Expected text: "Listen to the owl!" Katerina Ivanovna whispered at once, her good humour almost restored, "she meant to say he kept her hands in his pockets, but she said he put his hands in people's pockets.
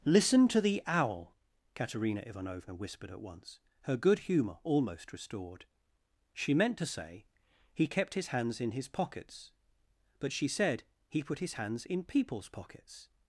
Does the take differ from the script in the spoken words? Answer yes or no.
yes